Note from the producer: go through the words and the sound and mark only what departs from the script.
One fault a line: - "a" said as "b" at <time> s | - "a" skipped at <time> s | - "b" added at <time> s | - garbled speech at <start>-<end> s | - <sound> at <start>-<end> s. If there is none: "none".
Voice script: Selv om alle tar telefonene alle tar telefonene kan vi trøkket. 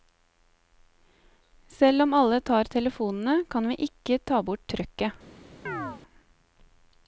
- "alle tar telefonene kan vi" said as "kan vi ikke ta bort" at 3.5 s
- chirp at 5.7-6.0 s